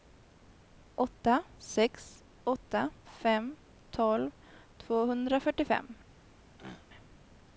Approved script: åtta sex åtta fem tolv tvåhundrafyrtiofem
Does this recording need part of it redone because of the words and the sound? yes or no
yes